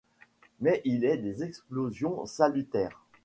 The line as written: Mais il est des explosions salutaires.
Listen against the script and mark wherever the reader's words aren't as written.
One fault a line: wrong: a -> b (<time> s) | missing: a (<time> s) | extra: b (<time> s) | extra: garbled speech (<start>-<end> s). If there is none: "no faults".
no faults